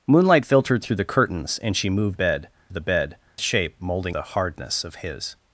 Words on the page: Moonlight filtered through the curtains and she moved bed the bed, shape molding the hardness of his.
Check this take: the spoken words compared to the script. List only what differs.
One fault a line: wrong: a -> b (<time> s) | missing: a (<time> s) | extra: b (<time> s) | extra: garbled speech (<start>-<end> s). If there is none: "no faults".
no faults